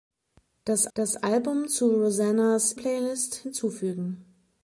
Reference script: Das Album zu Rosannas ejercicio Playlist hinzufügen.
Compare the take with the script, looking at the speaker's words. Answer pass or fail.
fail